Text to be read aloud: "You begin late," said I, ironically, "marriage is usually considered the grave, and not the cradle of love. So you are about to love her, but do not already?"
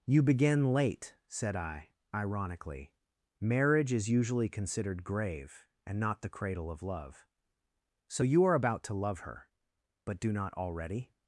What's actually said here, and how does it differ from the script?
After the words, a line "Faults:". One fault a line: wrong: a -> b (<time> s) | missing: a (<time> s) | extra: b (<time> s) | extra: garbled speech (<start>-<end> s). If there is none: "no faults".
"You begin late," said I, ironically, "marriage is usually considered grave, and not the cradle of love. So you are about to love her, but do not already?"
Faults:
missing: the (5.0 s)